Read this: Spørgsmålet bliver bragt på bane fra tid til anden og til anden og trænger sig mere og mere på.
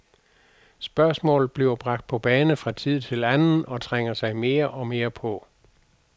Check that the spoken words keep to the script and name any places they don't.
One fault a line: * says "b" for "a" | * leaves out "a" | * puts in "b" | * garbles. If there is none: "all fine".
* leaves out "til anden og"